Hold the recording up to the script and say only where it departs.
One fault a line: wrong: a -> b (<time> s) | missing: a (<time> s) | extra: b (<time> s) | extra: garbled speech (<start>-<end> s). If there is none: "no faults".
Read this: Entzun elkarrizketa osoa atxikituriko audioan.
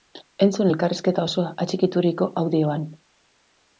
no faults